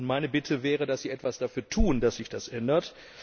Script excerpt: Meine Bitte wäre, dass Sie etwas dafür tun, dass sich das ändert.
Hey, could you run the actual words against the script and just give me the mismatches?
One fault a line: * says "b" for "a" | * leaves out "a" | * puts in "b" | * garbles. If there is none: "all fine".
all fine